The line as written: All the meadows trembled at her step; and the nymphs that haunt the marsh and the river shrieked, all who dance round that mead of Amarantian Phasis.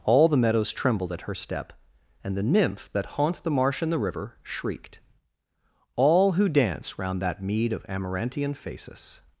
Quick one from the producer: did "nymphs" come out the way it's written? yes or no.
no